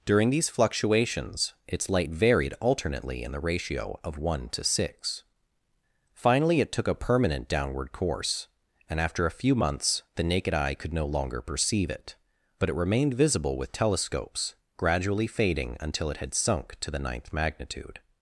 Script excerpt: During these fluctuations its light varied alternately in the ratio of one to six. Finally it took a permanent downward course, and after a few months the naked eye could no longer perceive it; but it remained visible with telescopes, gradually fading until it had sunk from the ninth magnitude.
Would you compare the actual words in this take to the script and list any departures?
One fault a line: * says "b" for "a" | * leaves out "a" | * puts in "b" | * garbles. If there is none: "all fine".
* says "to" for "from"